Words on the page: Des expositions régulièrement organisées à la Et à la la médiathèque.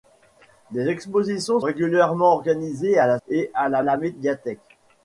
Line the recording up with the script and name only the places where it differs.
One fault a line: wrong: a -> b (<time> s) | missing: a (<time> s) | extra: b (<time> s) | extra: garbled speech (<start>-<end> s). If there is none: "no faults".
no faults